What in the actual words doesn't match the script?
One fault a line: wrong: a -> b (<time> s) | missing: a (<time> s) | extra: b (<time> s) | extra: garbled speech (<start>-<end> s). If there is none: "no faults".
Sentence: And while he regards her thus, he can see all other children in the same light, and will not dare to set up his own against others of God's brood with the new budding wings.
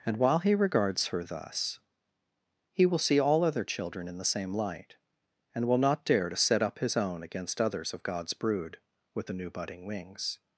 wrong: can -> will (2.9 s)